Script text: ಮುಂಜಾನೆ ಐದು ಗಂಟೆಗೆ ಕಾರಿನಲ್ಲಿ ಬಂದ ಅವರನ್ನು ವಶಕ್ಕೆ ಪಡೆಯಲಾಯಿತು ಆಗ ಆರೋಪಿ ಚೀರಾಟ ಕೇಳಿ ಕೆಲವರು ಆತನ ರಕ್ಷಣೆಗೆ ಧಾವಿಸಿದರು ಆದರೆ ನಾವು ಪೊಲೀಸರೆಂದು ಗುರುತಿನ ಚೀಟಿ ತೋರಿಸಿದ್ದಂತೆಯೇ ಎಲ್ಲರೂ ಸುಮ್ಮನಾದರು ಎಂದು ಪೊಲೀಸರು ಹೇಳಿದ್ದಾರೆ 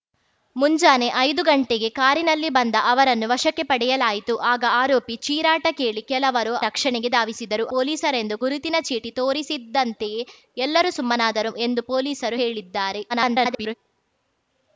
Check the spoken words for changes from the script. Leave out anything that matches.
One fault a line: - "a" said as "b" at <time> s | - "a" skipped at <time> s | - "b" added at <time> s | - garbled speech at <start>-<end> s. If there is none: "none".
- "ಆತನ" skipped at 6.5 s
- "ಆದರೆ ನಾವು" skipped at 7.7 s
- garbled speech at 13.1-13.7 s